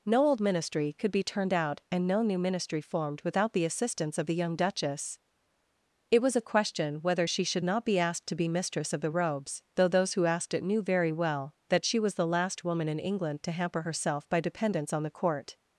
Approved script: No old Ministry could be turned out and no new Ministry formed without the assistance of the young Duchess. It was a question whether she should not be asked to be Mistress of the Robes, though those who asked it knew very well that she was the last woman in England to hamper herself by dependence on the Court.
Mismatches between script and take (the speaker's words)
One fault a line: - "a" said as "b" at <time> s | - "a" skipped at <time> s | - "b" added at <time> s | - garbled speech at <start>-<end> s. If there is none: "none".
none